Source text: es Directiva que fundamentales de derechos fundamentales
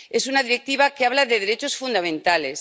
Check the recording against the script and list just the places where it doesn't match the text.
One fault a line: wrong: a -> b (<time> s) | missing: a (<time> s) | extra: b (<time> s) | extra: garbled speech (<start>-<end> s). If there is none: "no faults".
extra: una (0.3 s)
wrong: fundamentales -> habla (1.1 s)